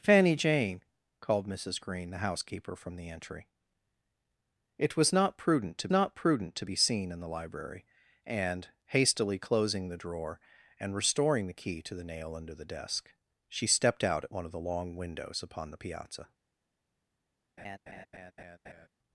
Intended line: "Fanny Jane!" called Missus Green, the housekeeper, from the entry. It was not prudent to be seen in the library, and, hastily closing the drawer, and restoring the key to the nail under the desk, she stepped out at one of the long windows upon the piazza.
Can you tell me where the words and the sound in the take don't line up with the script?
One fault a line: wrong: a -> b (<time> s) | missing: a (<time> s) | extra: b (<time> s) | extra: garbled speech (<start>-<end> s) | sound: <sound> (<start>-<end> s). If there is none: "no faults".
extra: not prudent to (5.9 s)
sound: laugh (17.6-18.9 s)